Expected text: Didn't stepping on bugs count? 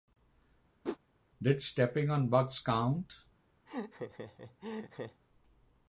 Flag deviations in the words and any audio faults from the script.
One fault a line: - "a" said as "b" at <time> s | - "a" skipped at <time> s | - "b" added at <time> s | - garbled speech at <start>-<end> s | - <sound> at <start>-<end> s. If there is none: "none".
- whoosh at 0.8-1.0 s
- "Didn't" said as "Did" at 1.4 s
- laugh at 3.7-5.2 s